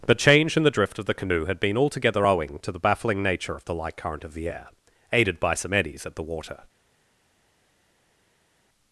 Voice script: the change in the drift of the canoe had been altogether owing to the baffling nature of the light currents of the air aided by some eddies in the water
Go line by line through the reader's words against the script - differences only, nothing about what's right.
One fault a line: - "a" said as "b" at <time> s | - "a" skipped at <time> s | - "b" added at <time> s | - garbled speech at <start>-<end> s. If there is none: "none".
- "currents" said as "current" at 4.0 s
- "in" said as "at" at 6.1 s